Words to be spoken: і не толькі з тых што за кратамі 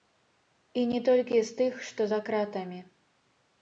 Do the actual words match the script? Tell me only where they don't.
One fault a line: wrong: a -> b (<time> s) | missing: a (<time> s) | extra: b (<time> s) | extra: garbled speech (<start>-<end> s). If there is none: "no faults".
no faults